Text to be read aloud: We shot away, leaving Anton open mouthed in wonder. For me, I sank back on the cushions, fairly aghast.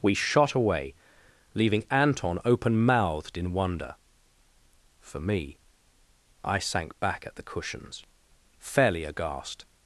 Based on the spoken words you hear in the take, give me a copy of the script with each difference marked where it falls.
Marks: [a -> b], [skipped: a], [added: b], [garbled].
We shot away, leaving Anton open mouthed in wonder. For me, I sank back [on -> at] the cushions, fairly aghast.